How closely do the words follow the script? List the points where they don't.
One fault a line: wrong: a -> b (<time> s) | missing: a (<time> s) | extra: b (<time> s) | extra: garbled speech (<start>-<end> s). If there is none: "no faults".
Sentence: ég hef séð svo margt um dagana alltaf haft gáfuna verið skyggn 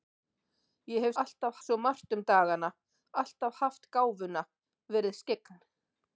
wrong: séð -> alltaf (1.2 s)